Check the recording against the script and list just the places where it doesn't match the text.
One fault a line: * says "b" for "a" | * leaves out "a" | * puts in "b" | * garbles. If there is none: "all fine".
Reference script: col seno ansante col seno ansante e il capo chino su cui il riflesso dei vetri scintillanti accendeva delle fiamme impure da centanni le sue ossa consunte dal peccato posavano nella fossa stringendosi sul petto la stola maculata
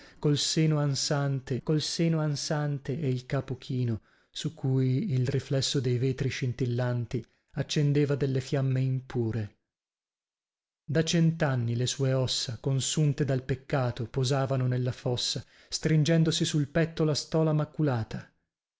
all fine